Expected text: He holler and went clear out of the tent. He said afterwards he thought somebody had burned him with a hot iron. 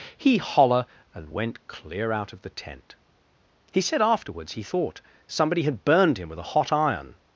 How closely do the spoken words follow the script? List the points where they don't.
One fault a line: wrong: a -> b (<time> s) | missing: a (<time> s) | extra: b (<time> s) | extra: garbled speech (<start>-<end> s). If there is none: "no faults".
no faults